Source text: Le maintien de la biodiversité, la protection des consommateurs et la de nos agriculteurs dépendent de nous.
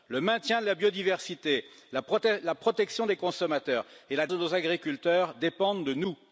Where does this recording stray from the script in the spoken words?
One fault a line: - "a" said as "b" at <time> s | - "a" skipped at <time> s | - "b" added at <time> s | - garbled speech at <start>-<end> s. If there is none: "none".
none